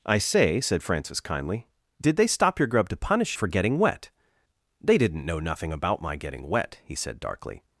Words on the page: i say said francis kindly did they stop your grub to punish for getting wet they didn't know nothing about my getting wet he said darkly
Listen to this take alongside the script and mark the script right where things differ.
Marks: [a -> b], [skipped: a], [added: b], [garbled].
i say said francis kindly did they stop your grub to punish for getting wet they didn't know nothing about my getting wet he said darkly